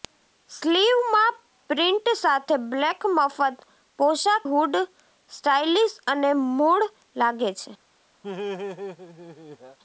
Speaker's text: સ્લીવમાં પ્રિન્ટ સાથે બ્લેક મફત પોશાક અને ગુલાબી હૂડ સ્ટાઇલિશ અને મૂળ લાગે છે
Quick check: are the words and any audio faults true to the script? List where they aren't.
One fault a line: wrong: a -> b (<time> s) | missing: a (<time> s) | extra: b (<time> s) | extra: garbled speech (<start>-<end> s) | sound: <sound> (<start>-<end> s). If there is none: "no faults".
missing: અને ગુલાબી (4.5 s)
sound: laugh (8.2-9.8 s)